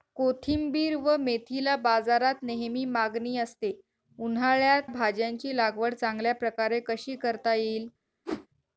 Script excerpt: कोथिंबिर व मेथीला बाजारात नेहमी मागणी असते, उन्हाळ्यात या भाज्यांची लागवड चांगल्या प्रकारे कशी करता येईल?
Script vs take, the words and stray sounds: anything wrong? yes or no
yes